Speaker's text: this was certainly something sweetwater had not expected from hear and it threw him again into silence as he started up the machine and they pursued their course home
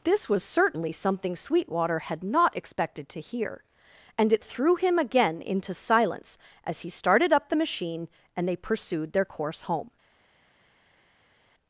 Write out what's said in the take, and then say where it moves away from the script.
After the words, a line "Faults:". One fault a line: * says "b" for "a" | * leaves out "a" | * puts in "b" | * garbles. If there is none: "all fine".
this was certainly something sweetwater had not expected to hear and it threw him again into silence as he started up the machine and they pursued their course home
Faults:
* says "to" for "from"